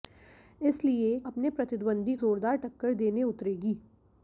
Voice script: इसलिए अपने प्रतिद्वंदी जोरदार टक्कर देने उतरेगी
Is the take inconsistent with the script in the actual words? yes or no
no